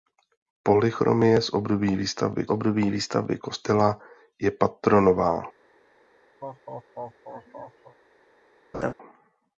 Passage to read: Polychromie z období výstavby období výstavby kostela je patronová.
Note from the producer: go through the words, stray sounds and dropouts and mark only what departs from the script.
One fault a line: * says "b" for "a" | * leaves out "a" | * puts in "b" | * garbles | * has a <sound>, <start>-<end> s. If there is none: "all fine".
* has a laugh, 6.4-8.0 s
* has a laugh, 8.7-8.9 s